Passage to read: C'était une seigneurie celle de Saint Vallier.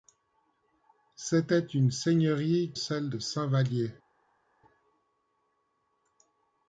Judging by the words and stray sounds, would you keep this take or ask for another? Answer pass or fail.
pass